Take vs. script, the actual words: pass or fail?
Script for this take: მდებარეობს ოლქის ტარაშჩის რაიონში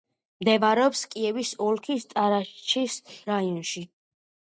fail